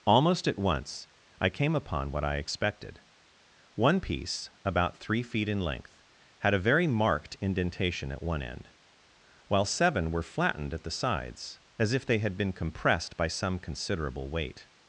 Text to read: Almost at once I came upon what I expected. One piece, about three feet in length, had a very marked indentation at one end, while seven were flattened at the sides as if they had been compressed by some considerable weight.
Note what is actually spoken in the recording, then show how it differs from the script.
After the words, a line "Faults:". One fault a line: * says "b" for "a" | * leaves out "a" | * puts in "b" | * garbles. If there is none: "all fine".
Almost at once I came upon what I expected. One piece, about three feet in length, had a very marked indentation at one end, while seven were flattened at the sides as if they had been compressed by some considerable weight.
Faults:
all fine